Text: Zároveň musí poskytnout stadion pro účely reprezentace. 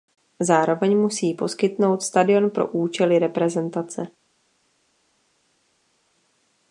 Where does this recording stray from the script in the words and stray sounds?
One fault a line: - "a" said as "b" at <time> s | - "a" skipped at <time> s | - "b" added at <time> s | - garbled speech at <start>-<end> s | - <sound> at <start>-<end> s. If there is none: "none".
none